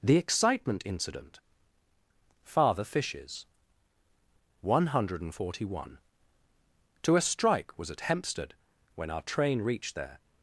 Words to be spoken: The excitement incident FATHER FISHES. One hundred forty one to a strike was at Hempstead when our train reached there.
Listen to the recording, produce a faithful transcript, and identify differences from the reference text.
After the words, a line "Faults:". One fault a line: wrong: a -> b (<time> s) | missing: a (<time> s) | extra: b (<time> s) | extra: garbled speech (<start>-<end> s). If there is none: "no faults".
The excitement incident FATHER FISHES. One hundred forty one to a strike was at Hempstead when our train reached there.
Faults:
no faults